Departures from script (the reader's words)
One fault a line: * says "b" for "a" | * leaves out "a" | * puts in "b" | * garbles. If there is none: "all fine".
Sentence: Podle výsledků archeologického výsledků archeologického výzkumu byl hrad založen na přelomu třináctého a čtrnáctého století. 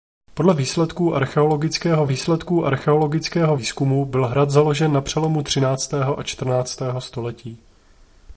all fine